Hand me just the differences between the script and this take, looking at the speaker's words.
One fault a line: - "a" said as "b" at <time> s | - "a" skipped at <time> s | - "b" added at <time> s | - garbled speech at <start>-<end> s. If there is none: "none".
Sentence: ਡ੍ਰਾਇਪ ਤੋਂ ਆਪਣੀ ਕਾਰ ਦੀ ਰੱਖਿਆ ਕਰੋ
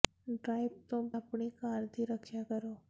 none